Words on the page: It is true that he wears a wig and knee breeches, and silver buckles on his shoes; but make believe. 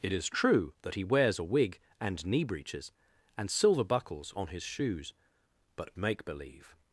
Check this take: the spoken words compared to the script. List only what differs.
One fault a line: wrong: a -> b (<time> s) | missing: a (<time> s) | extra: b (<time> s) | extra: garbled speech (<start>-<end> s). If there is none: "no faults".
no faults